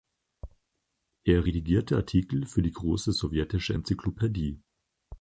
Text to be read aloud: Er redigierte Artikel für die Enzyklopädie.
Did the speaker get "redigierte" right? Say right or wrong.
right